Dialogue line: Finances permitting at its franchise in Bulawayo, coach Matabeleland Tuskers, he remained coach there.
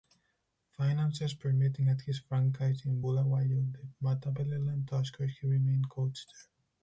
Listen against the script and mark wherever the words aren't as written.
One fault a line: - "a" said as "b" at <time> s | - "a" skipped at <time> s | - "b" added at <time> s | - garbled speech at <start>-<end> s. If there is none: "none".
- "its" said as "his" at 2.0 s
- "coach" said as "the" at 3.7 s